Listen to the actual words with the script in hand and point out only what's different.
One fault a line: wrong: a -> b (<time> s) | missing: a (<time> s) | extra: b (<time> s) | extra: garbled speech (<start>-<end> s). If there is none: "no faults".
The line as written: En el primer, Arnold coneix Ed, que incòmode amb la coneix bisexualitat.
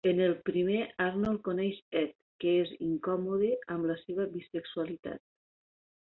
extra: és (2.6 s)
wrong: coneix -> seva (4.0 s)